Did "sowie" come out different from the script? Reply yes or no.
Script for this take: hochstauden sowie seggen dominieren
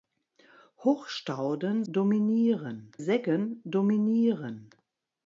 yes